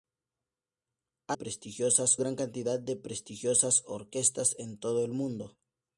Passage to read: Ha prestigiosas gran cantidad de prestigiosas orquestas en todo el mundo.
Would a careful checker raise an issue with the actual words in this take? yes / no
no